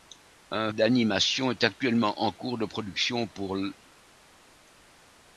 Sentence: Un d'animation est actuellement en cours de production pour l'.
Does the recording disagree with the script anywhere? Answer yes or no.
no